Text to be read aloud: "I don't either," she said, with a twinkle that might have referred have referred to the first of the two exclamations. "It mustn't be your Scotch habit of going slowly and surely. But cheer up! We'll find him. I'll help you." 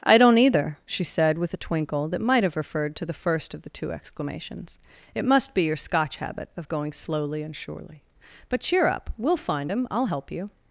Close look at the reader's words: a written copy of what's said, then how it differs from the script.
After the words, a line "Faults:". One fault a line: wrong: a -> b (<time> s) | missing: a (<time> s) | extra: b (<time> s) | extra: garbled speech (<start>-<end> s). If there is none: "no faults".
"I don't either," she said, with a twinkle that might have referred to the first of the two exclamations. "It must be your Scotch habit of going slowly and surely. But cheer up! We'll find him. I'll help you."
Faults:
missing: have referred (3.0 s)
wrong: mustn't -> must (5.2 s)